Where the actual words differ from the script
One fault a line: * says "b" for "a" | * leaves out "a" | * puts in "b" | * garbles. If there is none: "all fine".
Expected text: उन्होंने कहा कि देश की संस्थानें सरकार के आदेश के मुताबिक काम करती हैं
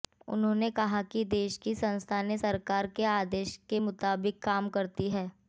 all fine